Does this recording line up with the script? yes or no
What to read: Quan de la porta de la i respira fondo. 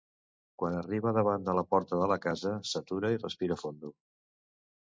no